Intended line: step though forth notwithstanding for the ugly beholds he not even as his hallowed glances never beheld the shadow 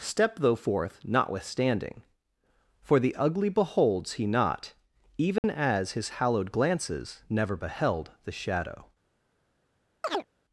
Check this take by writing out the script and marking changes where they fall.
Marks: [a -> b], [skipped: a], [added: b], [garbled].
step though forth notwithstanding for the ugly beholds he not even as his hallowed glances never beheld the shadow